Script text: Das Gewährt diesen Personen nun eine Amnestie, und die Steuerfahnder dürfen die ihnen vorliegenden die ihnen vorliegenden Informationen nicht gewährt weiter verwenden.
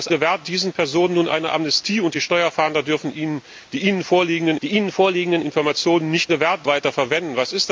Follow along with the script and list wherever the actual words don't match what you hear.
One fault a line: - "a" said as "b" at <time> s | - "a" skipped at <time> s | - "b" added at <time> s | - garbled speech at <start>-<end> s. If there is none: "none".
none